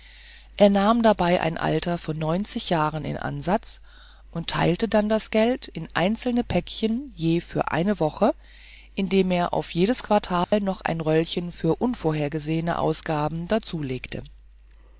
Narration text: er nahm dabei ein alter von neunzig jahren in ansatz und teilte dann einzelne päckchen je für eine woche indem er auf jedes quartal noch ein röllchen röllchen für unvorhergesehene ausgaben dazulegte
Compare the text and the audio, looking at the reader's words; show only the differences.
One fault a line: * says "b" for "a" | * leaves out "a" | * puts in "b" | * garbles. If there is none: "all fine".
* puts in "das geld in"
* leaves out "röllchen"